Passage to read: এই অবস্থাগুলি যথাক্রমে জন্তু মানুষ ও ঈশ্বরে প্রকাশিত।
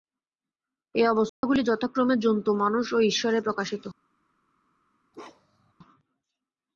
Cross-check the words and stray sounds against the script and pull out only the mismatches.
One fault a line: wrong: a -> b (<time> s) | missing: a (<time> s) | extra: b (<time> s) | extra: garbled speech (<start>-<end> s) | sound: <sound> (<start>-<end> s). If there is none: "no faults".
sound: dropout (1.3-1.4 s)
sound: bark (5.1-5.7 s)